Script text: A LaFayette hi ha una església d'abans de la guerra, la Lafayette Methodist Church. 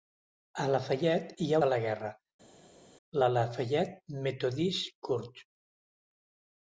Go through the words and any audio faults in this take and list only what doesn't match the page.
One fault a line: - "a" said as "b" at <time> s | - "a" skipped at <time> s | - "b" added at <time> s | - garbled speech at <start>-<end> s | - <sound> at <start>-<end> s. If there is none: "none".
- "una església d'abans" skipped at 1.6 s